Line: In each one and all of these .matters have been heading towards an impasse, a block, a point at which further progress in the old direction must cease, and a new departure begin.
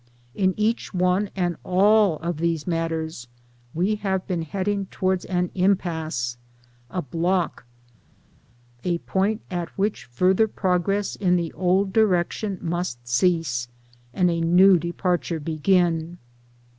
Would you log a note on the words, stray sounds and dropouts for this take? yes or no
yes